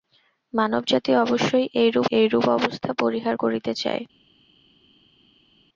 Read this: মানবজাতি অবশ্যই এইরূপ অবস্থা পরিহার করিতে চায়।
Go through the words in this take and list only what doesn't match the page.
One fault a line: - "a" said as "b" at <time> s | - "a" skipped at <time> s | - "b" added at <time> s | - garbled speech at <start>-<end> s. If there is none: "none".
- "এইরূপ" added at 2.1 s